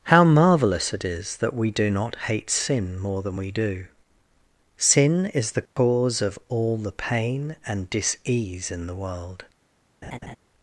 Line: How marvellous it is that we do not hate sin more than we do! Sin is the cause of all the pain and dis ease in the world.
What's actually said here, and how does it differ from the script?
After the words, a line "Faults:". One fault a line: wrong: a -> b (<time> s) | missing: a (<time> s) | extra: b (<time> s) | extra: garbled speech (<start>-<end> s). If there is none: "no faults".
How marvellous it is that we do not hate sin more than we do! Sin is the cause of all the pain and dis ease in the world.
Faults:
no faults